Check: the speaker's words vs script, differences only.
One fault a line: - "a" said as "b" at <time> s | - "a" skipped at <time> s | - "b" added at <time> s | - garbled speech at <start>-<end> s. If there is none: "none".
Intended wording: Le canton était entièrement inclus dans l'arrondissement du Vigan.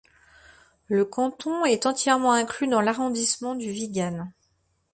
- "était" said as "est" at 1.6 s